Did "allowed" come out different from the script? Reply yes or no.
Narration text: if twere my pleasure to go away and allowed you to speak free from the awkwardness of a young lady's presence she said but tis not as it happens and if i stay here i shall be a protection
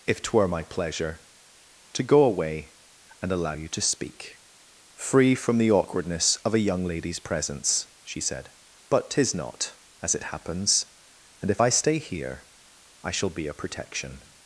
yes